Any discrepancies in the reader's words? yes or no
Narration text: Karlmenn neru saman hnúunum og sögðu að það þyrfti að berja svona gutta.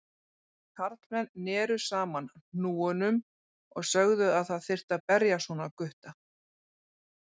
no